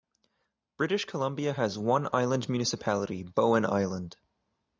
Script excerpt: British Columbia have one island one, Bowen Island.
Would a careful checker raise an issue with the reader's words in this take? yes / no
yes